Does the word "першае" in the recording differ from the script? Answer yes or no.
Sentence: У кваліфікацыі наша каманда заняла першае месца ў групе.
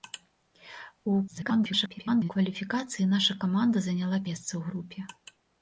yes